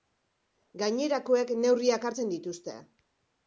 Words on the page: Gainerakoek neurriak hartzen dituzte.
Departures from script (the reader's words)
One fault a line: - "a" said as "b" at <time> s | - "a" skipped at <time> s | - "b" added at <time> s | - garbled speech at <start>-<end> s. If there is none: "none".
none